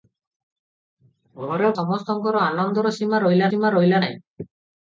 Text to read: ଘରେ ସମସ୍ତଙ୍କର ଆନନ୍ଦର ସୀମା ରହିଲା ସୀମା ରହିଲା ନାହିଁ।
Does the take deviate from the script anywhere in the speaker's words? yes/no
no